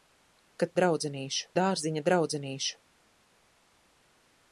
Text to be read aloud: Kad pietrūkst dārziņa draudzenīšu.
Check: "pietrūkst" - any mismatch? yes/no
yes